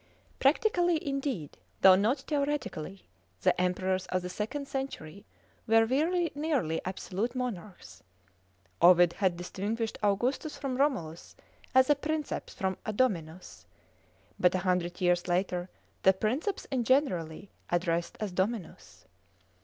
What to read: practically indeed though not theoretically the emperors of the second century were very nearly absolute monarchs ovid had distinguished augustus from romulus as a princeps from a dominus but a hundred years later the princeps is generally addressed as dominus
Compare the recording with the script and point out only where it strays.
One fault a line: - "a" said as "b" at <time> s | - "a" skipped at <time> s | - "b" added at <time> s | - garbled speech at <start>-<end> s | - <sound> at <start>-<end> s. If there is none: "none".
none